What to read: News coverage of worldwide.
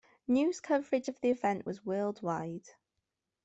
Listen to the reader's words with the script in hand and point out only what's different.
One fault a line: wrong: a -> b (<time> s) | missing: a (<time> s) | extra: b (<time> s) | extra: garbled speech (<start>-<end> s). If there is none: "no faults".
extra: the event was (1.2 s)